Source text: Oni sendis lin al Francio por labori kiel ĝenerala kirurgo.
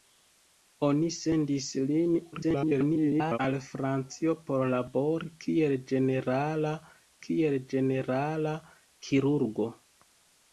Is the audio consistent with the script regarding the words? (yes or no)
no